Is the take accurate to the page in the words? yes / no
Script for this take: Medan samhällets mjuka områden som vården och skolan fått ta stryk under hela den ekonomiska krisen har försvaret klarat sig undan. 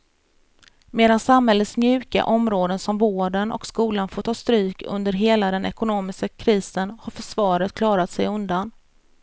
yes